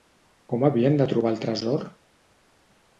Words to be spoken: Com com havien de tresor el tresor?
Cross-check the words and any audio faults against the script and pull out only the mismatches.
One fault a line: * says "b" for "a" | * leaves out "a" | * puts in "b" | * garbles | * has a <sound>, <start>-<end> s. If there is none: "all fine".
* leaves out "com"
* says "trobar" for "tresor"